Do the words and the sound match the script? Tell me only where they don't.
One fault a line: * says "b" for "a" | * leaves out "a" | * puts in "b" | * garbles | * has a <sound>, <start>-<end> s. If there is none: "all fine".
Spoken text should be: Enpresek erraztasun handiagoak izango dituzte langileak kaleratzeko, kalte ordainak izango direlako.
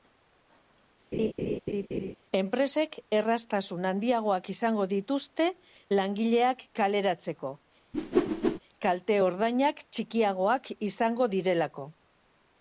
* has a laugh, 1.1-2.2 s
* has a whoosh, 7.9-8.6 s
* puts in "txikiagoak"